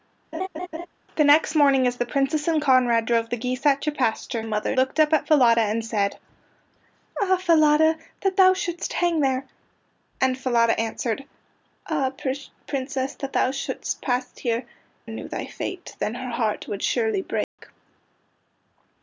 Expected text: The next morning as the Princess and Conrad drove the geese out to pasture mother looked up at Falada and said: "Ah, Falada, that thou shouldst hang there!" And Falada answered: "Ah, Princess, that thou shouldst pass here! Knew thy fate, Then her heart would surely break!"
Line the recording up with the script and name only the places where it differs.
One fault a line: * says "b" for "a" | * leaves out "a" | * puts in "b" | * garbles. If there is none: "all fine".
all fine